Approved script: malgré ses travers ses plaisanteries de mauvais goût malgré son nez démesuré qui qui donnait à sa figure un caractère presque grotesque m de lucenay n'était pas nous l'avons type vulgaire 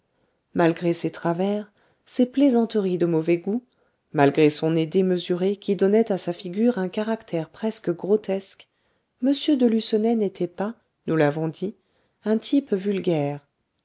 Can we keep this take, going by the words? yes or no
no